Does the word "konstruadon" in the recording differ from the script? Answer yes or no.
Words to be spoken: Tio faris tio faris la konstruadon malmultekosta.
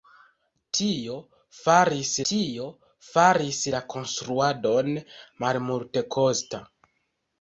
no